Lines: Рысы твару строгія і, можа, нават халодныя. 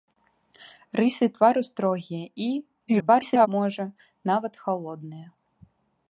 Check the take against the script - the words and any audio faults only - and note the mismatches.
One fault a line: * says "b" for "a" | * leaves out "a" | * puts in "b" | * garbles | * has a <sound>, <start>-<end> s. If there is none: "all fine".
* garbles